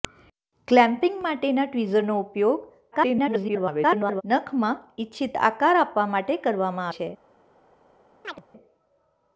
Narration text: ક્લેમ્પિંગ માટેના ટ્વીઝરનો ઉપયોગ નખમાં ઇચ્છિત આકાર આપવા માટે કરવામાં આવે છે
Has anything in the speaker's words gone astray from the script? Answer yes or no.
yes